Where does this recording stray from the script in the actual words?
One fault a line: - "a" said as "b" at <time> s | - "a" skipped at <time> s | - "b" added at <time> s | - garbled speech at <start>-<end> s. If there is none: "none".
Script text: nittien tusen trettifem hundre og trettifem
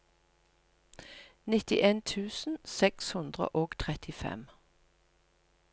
- "trettifem" said as "seks" at 2.6 s